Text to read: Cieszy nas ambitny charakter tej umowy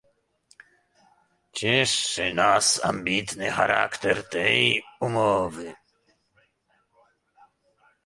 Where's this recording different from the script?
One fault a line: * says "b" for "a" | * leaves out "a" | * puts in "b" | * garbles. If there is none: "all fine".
all fine